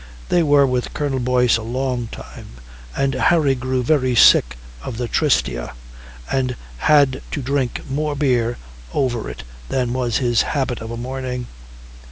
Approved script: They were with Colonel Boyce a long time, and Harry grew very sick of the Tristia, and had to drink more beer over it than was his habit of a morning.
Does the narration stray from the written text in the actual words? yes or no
no